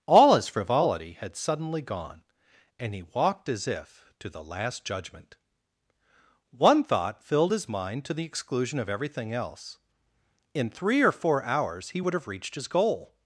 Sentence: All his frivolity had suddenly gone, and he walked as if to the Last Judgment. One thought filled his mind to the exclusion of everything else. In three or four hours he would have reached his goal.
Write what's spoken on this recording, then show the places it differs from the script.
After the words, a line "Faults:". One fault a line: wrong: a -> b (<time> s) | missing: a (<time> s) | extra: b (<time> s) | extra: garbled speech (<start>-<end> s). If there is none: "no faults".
All his frivolity had suddenly gone, and he walked as if to the Last Judgment. One thought filled his mind to the exclusion of everything else. In three or four hours he would have reached his goal.
Faults:
no faults